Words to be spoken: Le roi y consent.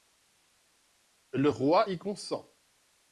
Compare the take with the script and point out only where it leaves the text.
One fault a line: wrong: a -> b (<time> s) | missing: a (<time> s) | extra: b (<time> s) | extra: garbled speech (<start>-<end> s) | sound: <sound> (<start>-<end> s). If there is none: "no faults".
no faults